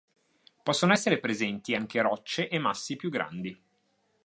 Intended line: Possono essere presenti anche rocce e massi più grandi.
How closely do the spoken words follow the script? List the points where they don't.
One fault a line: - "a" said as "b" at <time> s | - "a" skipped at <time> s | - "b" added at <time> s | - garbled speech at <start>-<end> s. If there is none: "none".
none